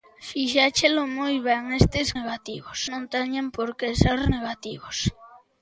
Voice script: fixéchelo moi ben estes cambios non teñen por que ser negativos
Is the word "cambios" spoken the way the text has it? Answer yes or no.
no